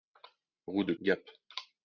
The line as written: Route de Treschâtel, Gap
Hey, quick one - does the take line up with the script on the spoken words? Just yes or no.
no